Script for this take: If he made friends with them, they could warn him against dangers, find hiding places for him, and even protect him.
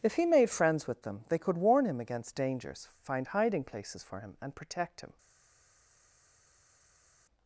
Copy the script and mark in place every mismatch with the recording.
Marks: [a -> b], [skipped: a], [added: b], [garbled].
If he made friends with them, they could warn him against dangers, find hiding places for him, and [skipped: even] protect him.